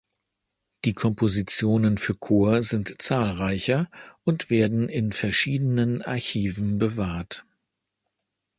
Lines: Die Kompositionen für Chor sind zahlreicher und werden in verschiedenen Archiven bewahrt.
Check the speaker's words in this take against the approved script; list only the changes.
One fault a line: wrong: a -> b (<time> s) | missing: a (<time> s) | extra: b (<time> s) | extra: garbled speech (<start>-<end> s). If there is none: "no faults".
no faults